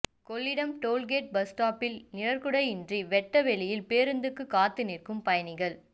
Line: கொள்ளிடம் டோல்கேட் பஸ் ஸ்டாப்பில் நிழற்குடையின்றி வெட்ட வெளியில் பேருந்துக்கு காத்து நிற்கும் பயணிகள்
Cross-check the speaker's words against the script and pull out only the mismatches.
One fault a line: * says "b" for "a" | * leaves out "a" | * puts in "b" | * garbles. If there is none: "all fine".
all fine